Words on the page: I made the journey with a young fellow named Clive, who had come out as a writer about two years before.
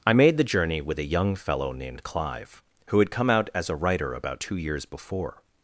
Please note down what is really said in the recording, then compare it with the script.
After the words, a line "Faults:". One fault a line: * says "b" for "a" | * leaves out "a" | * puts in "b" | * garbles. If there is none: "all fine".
I made the journey with a young fellow named Clive, who had come out as a writer about two years before.
Faults:
all fine